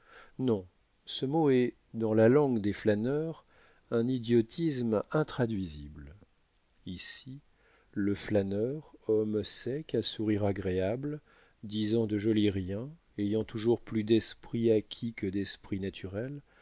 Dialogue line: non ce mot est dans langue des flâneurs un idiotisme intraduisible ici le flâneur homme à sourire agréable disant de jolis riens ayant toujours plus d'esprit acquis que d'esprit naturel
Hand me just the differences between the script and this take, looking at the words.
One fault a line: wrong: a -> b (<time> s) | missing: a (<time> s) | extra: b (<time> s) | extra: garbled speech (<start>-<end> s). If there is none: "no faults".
extra: la (2.1 s)
extra: sec (9.4 s)